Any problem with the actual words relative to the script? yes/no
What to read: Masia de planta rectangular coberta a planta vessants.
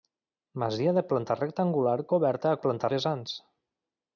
no